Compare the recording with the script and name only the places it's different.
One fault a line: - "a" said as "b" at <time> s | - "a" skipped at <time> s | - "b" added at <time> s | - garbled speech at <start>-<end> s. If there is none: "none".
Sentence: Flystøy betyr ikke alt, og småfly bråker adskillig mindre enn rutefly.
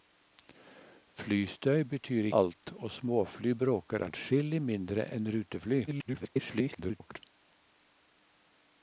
- "ikke" skipped at 2.3 s
- garbled speech at 5.9-7.2 s